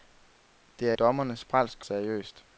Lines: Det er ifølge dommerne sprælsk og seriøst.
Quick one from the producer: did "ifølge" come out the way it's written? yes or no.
no